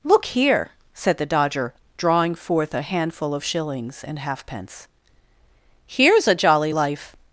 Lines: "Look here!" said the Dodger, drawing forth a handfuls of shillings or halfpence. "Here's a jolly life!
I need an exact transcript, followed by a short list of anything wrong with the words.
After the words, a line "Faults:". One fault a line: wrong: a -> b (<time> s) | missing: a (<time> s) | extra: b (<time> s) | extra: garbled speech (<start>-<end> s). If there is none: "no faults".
"Look here!" said the Dodger, drawing forth a handful of shillings and halfpence. "Here's a jolly life!
Faults:
wrong: handfuls -> handful (2.8 s)
wrong: or -> and (4.0 s)